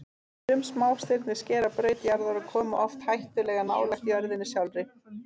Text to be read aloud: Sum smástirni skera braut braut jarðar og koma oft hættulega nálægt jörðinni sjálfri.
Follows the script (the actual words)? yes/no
no